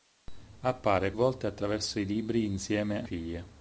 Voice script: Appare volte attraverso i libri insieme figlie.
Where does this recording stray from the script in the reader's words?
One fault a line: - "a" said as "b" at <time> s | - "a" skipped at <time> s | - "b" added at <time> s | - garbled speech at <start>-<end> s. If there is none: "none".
none